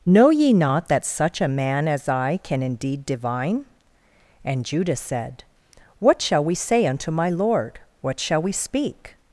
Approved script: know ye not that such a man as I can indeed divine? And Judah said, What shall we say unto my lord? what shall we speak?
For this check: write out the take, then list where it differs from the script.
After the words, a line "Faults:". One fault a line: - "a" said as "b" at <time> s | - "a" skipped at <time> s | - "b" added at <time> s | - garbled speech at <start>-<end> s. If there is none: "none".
know ye not that such a man as I can indeed divine? And Judah said, What shall we say unto my lord? what shall we speak?
Faults:
none